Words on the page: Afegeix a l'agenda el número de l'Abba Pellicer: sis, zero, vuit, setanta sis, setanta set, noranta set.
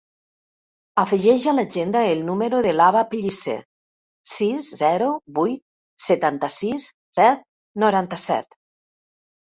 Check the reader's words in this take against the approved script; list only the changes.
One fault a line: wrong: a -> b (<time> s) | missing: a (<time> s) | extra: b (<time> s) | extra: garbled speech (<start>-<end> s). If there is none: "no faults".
missing: setanta (6.9 s)